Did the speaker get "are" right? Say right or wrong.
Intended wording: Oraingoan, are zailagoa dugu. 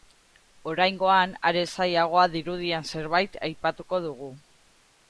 right